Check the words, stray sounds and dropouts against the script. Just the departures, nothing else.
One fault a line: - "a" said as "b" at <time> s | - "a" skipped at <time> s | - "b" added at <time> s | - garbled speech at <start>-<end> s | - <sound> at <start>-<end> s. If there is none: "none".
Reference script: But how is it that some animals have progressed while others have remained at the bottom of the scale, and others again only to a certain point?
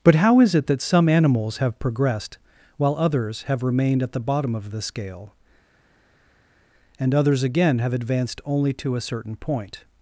- "have advanced" added at 7.8 s